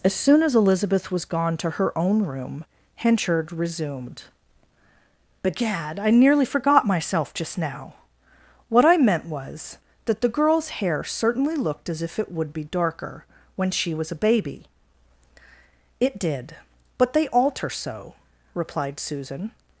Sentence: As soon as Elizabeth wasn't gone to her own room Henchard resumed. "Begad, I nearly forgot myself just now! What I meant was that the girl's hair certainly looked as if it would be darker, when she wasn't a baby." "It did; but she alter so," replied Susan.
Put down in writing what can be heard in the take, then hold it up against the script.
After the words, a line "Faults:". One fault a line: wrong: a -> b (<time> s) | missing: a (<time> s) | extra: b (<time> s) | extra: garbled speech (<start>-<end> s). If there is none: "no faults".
As soon as Elizabeth was gone to her own room Henchard resumed. "Begad, I nearly forgot myself just now! What I meant was that the girl's hair certainly looked as if it would be darker, when she was a baby." "It did; but they alter so," replied Susan.
Faults:
wrong: wasn't -> was (1.1 s)
wrong: wasn't -> was (13.9 s)
wrong: she -> they (17.1 s)